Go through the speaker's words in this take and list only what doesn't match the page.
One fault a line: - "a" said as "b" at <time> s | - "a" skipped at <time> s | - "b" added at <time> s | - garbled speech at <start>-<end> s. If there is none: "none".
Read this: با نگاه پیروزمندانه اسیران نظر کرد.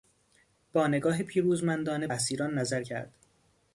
none